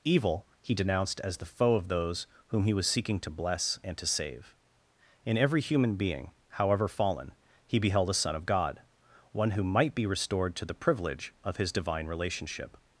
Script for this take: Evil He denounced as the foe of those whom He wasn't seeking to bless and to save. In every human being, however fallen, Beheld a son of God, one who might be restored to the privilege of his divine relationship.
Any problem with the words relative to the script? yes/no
yes